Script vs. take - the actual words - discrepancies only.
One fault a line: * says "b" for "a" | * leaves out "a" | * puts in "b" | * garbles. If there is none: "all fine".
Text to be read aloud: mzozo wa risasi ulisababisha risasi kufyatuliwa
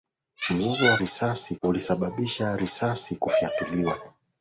all fine